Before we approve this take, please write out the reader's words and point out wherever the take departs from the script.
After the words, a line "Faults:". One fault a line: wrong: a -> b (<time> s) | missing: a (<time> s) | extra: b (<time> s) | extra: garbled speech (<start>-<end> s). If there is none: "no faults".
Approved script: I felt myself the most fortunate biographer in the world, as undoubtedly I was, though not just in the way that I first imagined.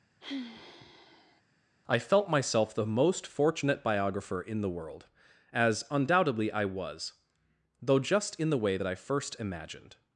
I felt myself the most fortunate biographer in the world, as undoubtedly I was, though just in the way that I first imagined.
Faults:
missing: not (8.0 s)